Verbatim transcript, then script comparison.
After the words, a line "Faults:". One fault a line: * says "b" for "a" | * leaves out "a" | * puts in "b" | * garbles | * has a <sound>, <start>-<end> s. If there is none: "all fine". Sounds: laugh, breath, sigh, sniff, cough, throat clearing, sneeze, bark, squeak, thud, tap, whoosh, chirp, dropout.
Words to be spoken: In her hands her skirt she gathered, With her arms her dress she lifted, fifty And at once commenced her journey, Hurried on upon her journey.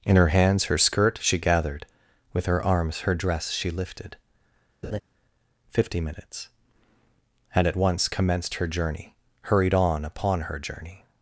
In her hands her skirt she gathered, With her arms her dress she lifted, fifty minutes And at once commenced her journey, Hurried on upon her journey.
Faults:
* has a laugh, 4.8-5.0 s
* puts in "minutes"